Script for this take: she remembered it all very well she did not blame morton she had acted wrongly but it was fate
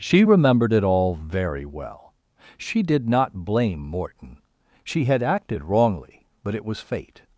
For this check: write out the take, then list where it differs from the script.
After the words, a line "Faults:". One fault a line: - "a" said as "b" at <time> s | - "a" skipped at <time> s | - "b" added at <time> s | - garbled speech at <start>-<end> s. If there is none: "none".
she remembered it all very well she did not blame morton she had acted wrongly but it was fate
Faults:
none